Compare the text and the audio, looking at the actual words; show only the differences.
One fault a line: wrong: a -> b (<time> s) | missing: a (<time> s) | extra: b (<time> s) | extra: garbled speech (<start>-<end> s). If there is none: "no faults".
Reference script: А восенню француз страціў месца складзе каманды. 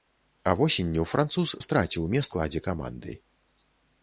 no faults